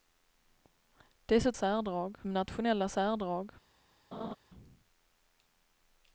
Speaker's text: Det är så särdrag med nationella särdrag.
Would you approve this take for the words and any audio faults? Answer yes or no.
no